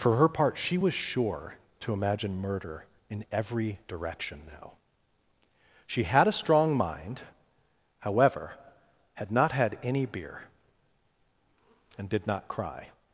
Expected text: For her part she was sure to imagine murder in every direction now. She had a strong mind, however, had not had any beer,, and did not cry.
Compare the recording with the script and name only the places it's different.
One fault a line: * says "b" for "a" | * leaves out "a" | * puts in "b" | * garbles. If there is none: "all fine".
all fine